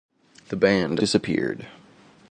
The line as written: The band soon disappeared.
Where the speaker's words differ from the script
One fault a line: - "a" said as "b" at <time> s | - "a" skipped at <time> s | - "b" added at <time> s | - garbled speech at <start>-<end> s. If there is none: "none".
- "soon" skipped at 1.1 s